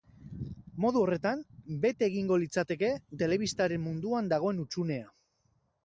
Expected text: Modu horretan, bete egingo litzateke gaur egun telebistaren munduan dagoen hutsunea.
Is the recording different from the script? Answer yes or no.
yes